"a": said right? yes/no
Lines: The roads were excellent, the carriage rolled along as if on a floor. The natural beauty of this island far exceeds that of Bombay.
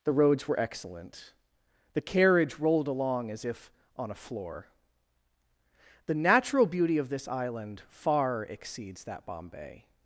yes